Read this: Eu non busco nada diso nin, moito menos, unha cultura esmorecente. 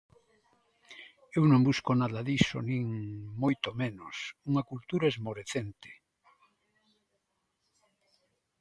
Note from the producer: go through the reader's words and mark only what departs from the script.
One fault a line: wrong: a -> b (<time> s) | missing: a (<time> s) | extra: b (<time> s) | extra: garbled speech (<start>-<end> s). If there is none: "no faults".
no faults